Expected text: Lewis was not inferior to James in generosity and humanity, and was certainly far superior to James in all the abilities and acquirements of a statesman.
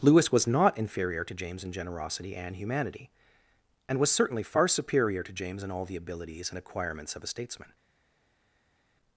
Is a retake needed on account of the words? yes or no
no